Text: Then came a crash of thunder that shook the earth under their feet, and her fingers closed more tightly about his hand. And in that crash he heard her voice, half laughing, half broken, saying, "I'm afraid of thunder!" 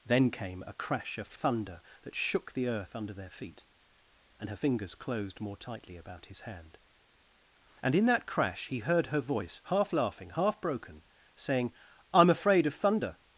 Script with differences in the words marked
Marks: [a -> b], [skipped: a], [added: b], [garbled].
Then came a crash of thunder that shook the earth under their feet, and her fingers closed more tightly about his hand. And in that crash he heard her voice, half laughing, half broken, saying, "I'm afraid of thunder!"